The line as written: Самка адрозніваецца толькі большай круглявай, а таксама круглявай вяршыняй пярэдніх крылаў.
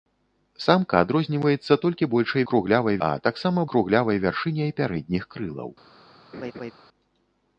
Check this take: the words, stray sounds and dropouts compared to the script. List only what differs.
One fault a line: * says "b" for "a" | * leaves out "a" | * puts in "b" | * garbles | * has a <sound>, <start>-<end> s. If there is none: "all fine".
* has a laugh, 6.3-6.7 s